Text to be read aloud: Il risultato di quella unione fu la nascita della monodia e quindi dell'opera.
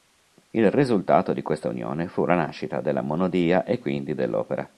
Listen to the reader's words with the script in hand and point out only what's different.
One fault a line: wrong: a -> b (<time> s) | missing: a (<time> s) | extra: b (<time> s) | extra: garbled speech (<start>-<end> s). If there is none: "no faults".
wrong: quella -> questa (1.4 s)